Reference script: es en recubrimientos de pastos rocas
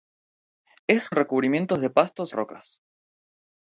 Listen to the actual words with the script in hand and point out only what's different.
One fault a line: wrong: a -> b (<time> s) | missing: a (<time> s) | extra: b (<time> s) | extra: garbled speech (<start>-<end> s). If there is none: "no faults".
no faults